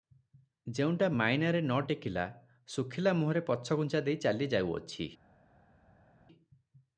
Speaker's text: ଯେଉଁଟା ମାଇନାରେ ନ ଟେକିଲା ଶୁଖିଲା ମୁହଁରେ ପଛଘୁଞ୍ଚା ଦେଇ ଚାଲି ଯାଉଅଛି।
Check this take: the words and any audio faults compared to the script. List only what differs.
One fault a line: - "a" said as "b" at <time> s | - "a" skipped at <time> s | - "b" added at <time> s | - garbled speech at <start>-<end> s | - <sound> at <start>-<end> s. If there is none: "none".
none